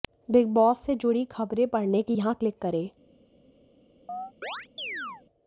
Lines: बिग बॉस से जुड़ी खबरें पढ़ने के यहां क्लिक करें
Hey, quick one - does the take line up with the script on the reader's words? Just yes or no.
yes